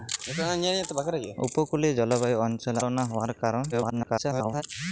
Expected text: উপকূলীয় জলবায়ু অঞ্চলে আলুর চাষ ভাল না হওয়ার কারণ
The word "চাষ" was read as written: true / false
false